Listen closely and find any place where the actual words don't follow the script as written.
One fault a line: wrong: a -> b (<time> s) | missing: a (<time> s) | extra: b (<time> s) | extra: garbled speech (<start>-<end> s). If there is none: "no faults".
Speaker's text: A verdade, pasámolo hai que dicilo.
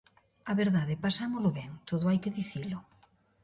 extra: ben todo (1.6 s)